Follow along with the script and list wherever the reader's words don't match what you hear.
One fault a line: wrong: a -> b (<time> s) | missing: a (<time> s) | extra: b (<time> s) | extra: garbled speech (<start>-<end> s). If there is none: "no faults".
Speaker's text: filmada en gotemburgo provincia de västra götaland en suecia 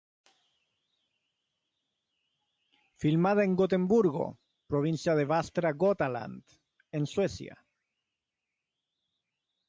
no faults